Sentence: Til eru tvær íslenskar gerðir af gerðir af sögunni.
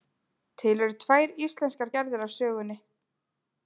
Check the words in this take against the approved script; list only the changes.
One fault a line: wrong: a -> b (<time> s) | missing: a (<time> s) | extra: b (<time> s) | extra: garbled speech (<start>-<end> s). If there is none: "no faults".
missing: gerðir af (2.4 s)